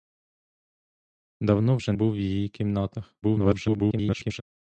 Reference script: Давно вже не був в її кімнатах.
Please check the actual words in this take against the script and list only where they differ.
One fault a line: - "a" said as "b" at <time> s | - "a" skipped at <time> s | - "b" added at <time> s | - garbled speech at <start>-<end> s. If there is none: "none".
- "не" skipped at 1.9 s
- garbled speech at 3.2-4.4 s